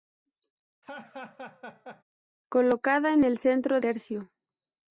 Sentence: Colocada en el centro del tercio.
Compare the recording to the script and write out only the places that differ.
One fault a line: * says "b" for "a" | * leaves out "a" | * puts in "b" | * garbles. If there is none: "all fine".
* leaves out "del"